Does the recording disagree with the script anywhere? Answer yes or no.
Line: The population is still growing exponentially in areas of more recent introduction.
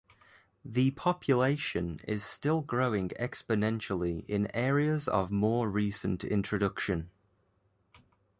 no